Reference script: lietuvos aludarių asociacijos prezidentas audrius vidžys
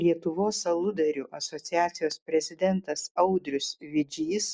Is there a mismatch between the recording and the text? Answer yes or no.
no